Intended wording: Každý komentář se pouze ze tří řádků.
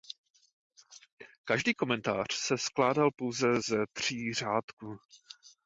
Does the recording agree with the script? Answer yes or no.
no